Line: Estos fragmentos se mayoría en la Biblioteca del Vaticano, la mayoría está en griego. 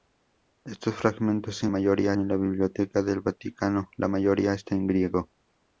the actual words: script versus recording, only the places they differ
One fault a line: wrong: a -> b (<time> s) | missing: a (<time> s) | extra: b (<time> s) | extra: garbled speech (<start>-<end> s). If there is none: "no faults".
no faults